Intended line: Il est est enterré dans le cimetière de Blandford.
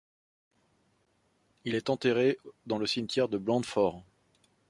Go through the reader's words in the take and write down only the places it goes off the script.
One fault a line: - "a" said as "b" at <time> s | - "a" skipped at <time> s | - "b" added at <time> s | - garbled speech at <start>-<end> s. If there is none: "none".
- "est" skipped at 1.9 s